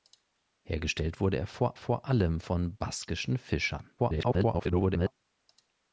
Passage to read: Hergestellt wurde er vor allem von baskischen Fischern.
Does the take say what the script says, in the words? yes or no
no